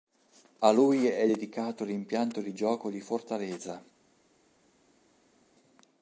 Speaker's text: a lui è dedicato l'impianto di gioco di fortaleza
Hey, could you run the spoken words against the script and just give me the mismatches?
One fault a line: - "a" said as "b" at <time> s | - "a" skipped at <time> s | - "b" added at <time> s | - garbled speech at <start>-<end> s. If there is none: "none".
none